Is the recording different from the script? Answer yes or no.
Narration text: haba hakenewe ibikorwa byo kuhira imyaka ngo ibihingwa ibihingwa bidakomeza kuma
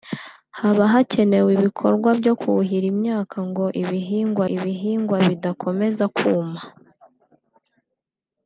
no